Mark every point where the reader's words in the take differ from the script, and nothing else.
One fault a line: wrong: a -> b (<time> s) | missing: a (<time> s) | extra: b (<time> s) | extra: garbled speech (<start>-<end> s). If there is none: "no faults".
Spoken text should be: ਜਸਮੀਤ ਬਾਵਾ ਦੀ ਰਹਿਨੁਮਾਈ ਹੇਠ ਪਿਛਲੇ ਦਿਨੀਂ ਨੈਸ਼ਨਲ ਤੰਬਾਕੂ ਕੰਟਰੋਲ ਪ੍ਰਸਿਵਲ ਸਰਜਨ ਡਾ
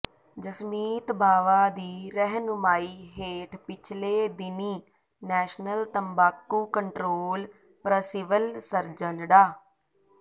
no faults